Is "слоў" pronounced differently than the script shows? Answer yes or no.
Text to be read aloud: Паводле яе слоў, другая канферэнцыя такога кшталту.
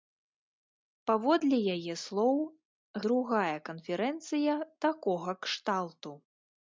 no